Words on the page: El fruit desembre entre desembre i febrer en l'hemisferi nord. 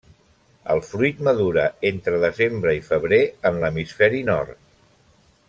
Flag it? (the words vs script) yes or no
yes